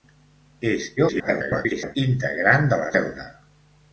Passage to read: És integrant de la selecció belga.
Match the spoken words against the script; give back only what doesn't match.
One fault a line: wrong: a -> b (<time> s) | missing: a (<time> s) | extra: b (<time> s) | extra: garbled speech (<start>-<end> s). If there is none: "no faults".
extra: garbled speech (1.0-2.0 s)
missing: selecció (2.9 s)